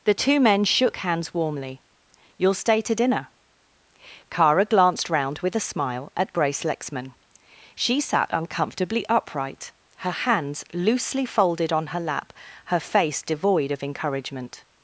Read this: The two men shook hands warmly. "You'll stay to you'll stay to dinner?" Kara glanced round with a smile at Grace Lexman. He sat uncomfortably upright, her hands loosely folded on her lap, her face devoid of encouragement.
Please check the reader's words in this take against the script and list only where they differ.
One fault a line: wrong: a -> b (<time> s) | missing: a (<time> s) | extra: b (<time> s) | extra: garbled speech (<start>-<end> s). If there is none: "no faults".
missing: you'll stay to (3.0 s)
wrong: He -> She (7.8 s)